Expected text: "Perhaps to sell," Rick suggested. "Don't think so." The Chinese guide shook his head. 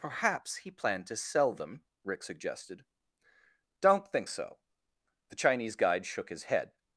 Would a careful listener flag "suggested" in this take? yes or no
no